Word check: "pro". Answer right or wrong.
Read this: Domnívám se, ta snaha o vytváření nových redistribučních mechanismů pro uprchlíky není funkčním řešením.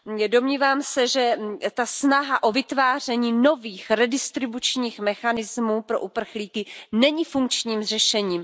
right